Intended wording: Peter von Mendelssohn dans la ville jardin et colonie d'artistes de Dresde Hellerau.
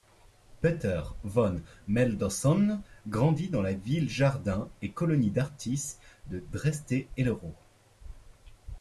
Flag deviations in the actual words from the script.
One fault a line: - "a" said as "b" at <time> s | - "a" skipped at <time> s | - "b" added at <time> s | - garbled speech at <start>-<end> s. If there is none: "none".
- "grandit" added at 3.1 s